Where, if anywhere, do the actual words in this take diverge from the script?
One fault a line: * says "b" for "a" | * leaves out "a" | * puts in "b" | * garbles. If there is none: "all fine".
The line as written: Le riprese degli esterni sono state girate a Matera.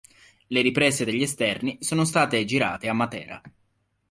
all fine